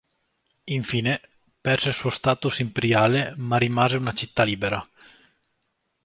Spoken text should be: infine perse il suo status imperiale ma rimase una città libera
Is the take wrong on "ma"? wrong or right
right